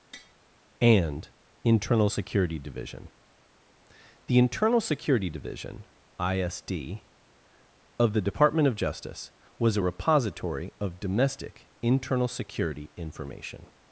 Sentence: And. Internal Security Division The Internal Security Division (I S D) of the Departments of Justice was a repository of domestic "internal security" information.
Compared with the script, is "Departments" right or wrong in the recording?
wrong